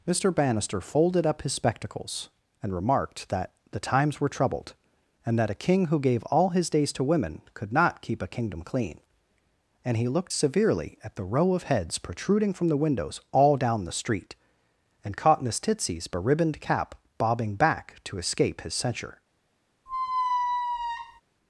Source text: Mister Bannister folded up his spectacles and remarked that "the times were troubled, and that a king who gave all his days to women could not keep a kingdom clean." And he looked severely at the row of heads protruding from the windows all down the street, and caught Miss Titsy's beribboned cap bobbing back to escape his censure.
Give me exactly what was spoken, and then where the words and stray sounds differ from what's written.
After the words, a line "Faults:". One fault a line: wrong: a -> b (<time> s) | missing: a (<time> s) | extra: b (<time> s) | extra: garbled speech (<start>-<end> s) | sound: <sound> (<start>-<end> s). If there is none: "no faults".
Mister Bannister folded up his spectacles and remarked that "the times were troubled, and that a king who gave all his days to women could not keep a kingdom clean." And he looked severely at the row of heads protruding from the windows all down the street, and caught Miss Titsy's beribboned cap bobbing back to escape his censure.
Faults:
sound: squeak (19.9-21.2 s)